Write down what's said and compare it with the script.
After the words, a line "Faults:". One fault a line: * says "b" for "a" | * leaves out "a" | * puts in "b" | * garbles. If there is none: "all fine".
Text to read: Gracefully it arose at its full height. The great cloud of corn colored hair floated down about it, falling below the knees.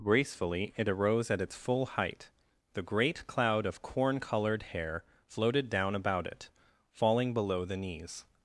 Gracefully it arose at its full height. The great cloud of corn colored hair floated down about it, falling below the knees.
Faults:
all fine